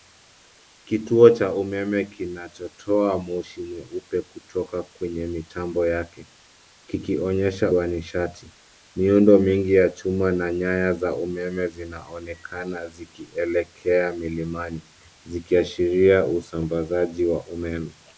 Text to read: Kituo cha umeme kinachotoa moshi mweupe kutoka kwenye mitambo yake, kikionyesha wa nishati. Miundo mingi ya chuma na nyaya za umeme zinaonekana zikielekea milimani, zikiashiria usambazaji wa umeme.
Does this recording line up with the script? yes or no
yes